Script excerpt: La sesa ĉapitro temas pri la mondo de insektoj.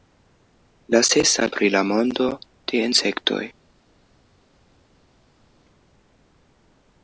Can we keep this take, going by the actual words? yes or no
no